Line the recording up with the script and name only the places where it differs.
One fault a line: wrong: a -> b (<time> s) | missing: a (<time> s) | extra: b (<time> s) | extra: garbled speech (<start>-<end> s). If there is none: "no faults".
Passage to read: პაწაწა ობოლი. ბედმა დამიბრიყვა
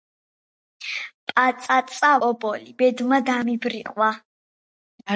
no faults